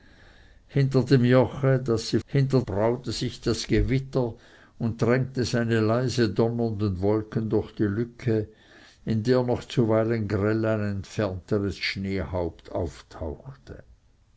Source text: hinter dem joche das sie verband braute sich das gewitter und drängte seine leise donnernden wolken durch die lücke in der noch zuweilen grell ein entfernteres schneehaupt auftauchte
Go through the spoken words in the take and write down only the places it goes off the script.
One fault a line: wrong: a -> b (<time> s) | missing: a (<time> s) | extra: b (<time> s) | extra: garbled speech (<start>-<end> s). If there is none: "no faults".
wrong: verband -> hinter (2.3 s)